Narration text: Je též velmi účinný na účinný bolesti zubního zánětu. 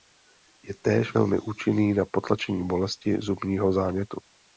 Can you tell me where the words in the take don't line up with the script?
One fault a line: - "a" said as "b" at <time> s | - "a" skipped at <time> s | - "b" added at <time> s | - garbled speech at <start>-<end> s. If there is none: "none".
- "účinný" said as "potlačení" at 2.0 s